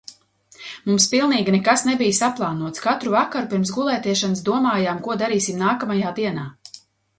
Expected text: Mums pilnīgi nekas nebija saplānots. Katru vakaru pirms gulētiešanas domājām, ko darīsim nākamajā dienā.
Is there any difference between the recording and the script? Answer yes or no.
no